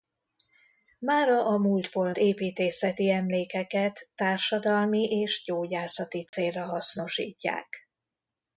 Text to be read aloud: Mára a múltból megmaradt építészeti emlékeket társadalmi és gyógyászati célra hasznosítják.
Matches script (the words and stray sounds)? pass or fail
fail